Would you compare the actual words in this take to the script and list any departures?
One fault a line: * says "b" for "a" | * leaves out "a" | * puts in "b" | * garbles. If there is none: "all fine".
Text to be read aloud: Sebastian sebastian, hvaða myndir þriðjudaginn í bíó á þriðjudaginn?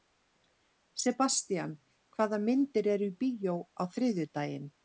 * leaves out "sebastian"
* says "eru" for "þriðjudaginn"